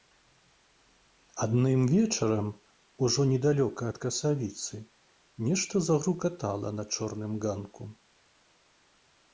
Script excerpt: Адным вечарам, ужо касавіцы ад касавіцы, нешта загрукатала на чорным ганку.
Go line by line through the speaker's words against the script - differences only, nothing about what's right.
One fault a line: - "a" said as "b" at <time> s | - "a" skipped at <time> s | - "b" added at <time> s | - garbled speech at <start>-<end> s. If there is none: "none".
- "касавіцы" said as "недалёка" at 3.3 s